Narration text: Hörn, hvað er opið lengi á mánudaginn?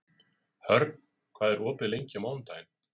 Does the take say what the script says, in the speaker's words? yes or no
yes